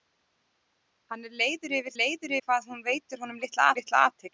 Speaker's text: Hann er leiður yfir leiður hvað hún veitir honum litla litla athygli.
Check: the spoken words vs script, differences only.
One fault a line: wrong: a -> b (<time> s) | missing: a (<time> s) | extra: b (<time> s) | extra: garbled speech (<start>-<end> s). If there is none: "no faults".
no faults